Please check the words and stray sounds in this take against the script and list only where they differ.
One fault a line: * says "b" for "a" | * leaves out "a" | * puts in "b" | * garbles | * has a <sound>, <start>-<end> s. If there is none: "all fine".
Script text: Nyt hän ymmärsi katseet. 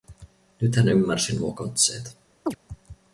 * puts in "nuo"
* has a chirp, 2.5-2.6 s